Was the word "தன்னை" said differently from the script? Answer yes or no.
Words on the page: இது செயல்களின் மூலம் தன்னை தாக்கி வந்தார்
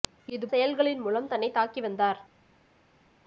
no